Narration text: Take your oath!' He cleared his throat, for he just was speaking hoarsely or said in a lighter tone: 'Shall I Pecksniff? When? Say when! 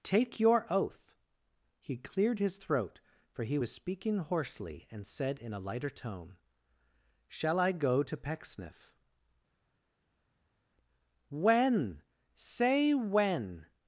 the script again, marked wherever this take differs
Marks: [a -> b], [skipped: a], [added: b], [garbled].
Take your oath!' He cleared his throat, for he [skipped: just] was speaking hoarsely [or -> and] said in a lighter tone: 'Shall I [added: go to] Pecksniff? When? Say when!